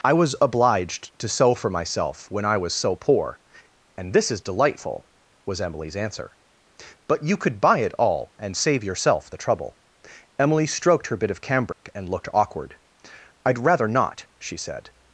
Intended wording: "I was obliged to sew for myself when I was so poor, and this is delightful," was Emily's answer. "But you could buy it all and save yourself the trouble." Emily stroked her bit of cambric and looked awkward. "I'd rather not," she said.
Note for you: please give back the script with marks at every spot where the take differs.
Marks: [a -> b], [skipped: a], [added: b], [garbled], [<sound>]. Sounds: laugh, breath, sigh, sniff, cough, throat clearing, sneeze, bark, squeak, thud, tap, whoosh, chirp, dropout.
"I was obliged to sew for myself when I was so poor, and this is delightful," was Emily's answer. "But you could buy it all and save yourself the trouble." Emily stroked her bit of cambric [dropout] and looked awkward. "I'd rather not," she said.